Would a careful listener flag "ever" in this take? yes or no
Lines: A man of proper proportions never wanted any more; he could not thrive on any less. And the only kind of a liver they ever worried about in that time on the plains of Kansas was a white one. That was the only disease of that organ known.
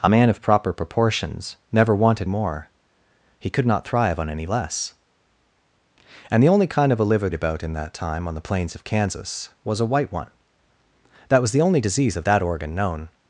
yes